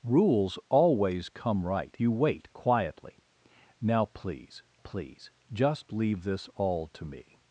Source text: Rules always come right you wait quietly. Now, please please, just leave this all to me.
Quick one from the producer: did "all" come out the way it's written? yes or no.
yes